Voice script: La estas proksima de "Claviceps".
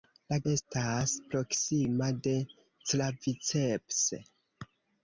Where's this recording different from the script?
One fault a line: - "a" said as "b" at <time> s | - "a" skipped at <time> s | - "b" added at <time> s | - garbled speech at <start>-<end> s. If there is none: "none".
none